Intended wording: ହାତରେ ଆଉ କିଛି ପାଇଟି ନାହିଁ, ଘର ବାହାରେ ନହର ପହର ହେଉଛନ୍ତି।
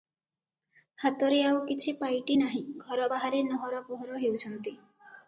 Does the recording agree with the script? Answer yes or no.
yes